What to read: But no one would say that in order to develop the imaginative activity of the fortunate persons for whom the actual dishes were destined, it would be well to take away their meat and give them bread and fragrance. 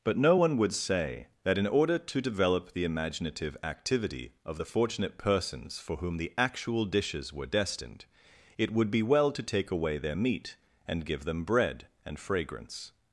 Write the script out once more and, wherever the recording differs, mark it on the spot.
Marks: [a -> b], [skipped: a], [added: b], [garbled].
But no one would say that in order to develop the imaginative activity of the fortunate persons for whom the actual dishes were destined, it would be well to take away their meat and give them bread and fragrance.